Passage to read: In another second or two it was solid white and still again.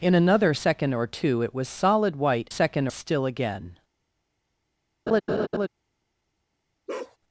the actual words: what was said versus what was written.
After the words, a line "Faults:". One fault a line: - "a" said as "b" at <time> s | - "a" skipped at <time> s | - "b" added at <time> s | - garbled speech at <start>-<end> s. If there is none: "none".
In another second or two it was solid white second still again.
Faults:
- "and" said as "second" at 2.5 s